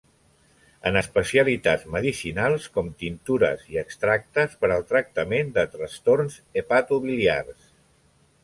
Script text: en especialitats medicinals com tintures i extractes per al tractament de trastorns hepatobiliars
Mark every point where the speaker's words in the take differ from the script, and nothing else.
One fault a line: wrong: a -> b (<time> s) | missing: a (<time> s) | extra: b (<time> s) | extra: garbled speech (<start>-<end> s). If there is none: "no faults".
no faults